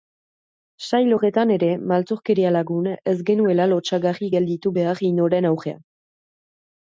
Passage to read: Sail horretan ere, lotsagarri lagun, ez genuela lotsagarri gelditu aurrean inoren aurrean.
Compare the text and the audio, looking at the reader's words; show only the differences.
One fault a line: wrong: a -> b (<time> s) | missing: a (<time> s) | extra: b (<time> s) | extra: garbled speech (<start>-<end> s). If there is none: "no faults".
wrong: lotsagarri -> maltzurkeria (1.9 s)
wrong: aurrean -> behar (4.8 s)